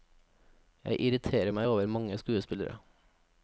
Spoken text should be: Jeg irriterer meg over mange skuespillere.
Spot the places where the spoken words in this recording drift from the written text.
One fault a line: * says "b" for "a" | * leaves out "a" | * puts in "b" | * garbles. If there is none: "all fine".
all fine